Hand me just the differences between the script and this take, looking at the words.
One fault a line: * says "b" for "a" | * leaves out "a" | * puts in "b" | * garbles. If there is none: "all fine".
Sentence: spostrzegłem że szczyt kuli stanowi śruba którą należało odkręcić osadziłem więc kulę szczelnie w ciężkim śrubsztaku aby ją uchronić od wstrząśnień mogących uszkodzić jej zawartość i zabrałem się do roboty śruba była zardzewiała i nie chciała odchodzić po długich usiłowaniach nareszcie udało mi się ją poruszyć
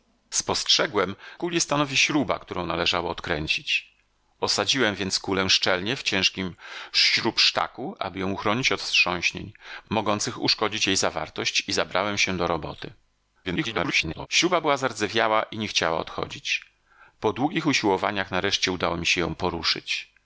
* leaves out "że szczyt"
* garbles